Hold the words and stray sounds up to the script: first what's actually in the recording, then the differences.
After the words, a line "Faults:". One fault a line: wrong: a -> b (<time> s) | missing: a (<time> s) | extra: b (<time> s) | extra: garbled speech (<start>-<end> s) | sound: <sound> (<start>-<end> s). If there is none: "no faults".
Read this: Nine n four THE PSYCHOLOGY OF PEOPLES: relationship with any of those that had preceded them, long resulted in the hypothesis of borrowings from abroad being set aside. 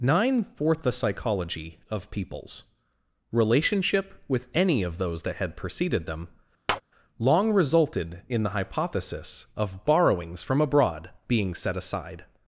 Nine fourth THE PSYCHOLOGY OF PEOPLES: relationship with any of those that had preceded them, long resulted in the hypothesis of borrowings from abroad being set aside.
Faults:
wrong: n four -> fourth (0.4 s)
sound: tap (6.7-6.8 s)